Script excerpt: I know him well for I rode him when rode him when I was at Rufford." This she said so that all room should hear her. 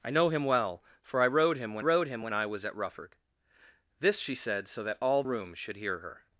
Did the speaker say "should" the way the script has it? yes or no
yes